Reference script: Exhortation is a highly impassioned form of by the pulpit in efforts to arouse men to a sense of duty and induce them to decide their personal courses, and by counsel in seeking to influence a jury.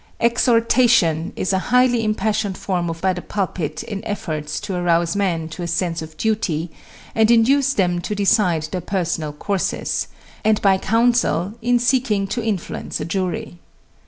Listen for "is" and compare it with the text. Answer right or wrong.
right